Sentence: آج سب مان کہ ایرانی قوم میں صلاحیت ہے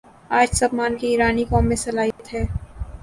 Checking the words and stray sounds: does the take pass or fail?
fail